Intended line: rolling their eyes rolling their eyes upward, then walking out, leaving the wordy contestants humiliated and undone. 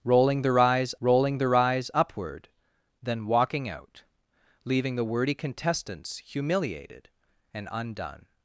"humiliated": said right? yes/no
yes